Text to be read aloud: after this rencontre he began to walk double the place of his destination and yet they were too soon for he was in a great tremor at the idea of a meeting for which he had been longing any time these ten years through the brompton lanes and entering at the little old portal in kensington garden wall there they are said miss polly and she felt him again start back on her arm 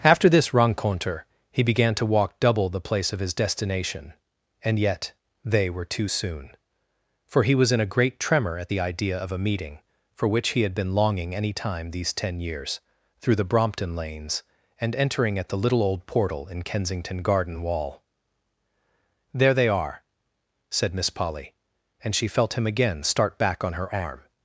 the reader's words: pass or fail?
pass